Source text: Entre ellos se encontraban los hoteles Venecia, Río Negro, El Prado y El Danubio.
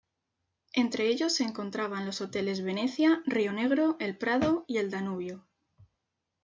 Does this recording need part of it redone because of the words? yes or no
no